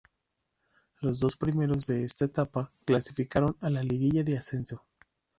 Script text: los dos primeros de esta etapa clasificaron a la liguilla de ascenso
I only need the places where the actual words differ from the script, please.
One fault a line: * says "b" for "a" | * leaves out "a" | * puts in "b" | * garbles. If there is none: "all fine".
all fine